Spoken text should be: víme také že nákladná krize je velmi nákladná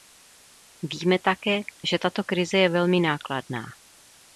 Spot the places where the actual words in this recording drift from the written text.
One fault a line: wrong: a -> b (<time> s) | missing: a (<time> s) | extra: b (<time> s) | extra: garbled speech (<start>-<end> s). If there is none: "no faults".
wrong: nákladná -> tato (2.0 s)